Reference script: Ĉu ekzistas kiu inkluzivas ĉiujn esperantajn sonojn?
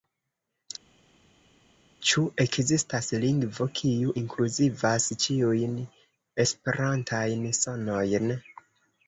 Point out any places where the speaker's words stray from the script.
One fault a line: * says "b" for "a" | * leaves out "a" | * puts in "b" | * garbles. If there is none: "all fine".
* puts in "lingvo"